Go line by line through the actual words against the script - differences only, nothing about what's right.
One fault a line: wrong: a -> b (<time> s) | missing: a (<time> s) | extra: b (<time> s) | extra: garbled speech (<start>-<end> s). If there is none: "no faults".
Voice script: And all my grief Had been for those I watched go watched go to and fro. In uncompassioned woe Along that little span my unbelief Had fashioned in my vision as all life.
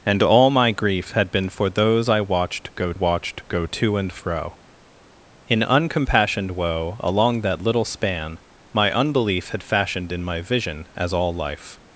no faults